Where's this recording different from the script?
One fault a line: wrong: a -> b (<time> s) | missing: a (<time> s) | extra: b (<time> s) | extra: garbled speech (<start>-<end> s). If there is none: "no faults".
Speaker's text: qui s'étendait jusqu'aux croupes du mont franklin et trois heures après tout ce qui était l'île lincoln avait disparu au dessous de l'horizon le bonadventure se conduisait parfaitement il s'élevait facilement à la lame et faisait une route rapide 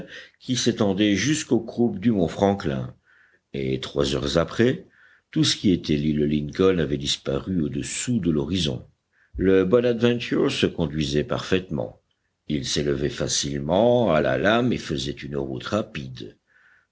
no faults